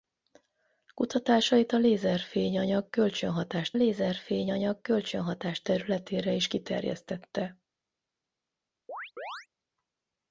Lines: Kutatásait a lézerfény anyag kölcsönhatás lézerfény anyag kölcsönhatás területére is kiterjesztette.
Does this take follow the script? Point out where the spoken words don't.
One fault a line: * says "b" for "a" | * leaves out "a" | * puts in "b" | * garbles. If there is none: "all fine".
all fine